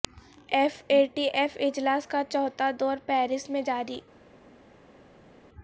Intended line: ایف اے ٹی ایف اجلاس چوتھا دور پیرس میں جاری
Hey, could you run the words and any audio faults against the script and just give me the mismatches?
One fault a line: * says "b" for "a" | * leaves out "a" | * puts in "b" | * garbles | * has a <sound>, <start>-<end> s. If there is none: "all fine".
* puts in "کا"